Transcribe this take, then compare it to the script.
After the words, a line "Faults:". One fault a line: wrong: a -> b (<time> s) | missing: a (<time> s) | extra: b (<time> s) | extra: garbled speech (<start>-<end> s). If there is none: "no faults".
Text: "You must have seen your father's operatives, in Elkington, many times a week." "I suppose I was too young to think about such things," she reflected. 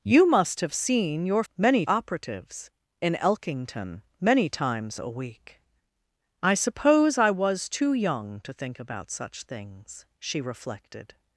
"You must have seen your many operatives, in Elkington, many times a week." "I suppose I was too young to think about such things," she reflected.
Faults:
wrong: father's -> many (1.5 s)